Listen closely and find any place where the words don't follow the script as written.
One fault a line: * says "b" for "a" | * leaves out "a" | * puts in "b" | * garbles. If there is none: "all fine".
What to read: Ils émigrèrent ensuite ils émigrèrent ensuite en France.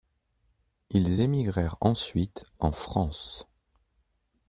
* leaves out "ils émigrèrent ensuite"